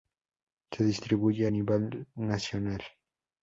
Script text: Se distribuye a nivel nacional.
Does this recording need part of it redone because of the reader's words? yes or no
no